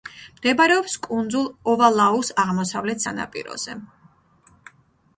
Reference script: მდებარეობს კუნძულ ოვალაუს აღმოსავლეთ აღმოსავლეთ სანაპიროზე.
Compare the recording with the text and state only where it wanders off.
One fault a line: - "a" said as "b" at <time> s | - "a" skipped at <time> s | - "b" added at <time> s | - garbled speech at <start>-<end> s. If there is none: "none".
- "აღმოსავლეთ" skipped at 3.1 s